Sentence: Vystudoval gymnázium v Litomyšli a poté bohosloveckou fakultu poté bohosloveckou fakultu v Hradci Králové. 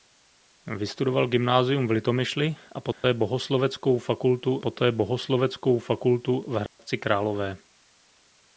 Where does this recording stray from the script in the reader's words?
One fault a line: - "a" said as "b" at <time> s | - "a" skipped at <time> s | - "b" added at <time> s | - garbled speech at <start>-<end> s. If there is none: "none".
none